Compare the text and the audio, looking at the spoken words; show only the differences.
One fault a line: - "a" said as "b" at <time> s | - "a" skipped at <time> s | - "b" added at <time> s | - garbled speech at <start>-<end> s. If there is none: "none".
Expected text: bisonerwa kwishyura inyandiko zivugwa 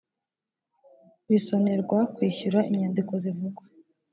none